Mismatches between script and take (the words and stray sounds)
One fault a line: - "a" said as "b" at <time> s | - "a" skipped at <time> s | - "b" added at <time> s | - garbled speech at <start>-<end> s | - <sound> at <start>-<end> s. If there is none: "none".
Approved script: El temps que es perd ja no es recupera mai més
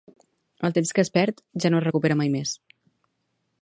none